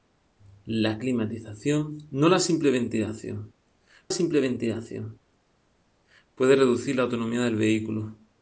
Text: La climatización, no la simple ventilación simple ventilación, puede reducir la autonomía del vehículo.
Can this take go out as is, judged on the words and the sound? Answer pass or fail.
pass